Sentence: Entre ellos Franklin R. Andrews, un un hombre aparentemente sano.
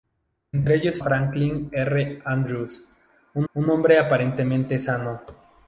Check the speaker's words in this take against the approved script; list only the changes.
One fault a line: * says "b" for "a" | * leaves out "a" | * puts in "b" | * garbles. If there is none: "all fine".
all fine